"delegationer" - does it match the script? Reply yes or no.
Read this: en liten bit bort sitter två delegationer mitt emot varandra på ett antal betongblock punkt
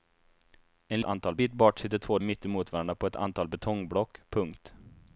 no